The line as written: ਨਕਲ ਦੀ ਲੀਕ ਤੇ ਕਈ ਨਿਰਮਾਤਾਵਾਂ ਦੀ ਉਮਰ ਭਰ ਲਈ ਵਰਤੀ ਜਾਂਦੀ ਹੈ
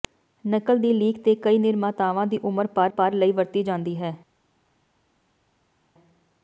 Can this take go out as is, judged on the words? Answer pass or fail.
fail